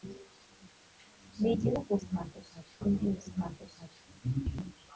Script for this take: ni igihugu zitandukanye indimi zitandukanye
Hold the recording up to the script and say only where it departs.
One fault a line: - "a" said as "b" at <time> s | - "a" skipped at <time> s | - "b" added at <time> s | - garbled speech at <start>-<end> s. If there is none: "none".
none